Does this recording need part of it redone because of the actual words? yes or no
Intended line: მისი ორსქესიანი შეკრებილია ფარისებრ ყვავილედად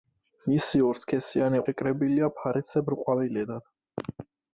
no